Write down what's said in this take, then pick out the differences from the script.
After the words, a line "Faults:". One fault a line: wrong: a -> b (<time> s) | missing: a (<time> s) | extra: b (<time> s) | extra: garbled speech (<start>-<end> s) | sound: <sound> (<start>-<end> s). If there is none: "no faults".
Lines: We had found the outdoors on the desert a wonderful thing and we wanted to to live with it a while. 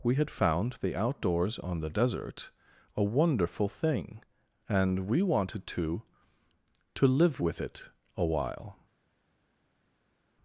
We had found the outdoors on the desert a wonderful thing and we wanted to to live with it a while.
Faults:
no faults